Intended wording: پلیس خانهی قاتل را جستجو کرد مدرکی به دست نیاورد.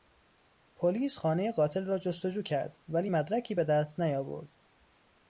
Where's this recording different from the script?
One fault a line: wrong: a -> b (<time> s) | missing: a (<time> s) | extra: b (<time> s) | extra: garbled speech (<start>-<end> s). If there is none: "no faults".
extra: ولی (2.9 s)